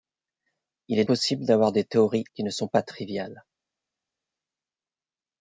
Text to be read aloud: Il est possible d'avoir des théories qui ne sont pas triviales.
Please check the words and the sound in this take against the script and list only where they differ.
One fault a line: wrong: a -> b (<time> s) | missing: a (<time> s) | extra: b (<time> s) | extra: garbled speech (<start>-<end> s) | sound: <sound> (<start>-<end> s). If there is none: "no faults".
no faults